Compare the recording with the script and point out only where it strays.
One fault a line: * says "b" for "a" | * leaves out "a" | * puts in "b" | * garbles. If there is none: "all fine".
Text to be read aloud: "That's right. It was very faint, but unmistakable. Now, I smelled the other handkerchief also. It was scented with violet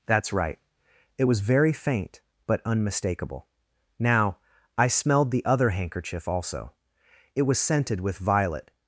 all fine